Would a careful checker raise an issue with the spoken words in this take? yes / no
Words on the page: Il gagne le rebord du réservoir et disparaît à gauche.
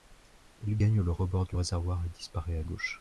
no